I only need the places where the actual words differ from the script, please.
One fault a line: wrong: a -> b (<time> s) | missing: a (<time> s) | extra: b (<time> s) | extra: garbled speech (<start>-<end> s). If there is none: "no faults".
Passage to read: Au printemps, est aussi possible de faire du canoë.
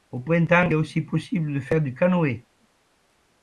no faults